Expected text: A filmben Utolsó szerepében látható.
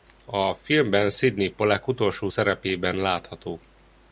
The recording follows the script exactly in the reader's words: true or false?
false